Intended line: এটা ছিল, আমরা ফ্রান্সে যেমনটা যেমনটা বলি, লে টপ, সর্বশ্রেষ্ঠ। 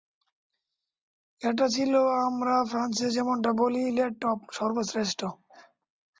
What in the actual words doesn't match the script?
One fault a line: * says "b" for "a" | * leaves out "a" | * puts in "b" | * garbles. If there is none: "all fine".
* leaves out "যেমনটা"